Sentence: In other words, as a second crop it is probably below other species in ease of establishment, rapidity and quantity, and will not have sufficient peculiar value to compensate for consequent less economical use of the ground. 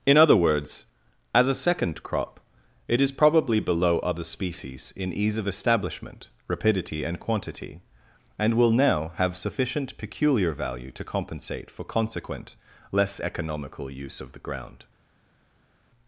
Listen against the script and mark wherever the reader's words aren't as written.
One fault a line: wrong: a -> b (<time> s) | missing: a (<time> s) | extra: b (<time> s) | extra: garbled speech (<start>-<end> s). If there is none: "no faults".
wrong: not -> now (8.7 s)